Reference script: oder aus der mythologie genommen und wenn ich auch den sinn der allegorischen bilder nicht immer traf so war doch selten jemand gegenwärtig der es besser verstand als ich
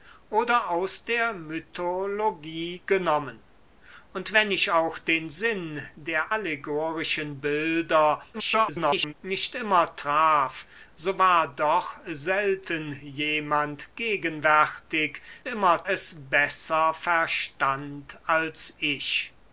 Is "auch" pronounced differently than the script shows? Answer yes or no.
no